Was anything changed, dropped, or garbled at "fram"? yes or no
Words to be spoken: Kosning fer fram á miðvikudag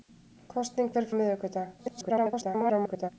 yes